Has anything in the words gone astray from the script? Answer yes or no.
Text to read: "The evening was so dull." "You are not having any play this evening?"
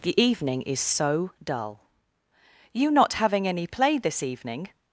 yes